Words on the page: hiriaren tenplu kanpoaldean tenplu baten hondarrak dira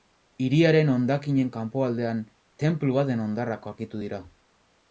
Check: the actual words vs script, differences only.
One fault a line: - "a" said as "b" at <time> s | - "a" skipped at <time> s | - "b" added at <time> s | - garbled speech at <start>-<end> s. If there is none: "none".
- "tenplu" said as "hondakinen" at 0.9 s
- "aurkitu" added at 3.7 s